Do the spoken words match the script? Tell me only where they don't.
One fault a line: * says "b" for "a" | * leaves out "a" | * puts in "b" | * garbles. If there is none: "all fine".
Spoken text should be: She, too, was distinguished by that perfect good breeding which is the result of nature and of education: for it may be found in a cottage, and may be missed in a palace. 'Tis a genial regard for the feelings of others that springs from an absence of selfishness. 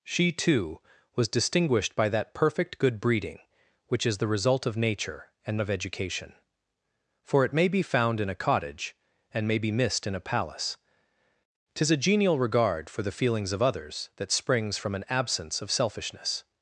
all fine